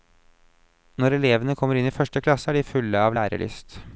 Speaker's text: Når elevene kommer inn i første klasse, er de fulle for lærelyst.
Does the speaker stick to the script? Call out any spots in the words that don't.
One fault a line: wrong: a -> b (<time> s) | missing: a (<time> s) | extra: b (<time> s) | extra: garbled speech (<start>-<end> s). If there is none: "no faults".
wrong: for -> av (3.0 s)